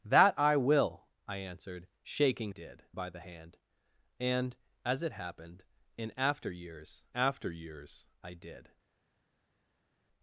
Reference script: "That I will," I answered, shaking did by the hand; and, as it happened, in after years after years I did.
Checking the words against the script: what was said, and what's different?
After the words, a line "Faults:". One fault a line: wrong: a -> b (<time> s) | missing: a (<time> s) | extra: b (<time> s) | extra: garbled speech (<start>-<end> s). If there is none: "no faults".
"That I will," I answered, shaking did by the hand; and, as it happened, in after years after years I did.
Faults:
no faults